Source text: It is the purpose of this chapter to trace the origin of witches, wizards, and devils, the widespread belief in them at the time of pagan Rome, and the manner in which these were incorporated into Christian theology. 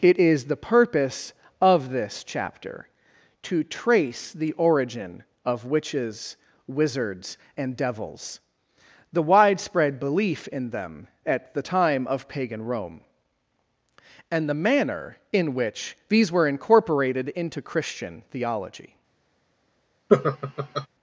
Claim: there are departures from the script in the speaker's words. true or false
false